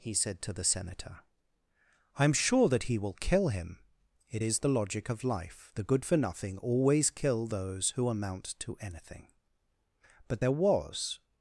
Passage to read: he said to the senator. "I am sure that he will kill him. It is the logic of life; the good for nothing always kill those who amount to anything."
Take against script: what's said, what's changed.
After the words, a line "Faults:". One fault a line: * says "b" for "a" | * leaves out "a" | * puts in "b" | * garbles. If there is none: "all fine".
he said to the senator. "I am sure that he will kill him. It is the logic of life; the good for nothing always kill those who amount to anything." But there was
Faults:
* puts in "But there was"